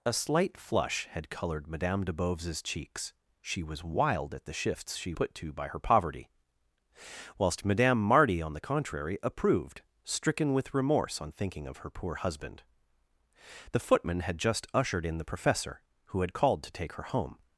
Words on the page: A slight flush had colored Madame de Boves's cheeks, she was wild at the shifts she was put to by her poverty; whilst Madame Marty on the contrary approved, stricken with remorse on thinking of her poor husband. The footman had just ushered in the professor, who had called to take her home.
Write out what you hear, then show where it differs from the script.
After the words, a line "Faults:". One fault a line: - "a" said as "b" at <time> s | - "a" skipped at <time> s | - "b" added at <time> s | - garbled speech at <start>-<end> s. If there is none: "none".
A slight flush had colored Madame de Boves's cheeks, she was wild at the shifts she put to by her poverty; whilst Madame Marty on the contrary approved, stricken with remorse on thinking of her poor husband. The footman had just ushered in the professor, who had called to take her home.
Faults:
- "was" skipped at 5.1 s